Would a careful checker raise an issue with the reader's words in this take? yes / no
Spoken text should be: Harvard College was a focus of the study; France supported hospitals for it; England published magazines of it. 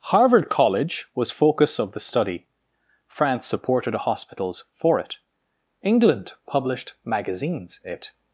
yes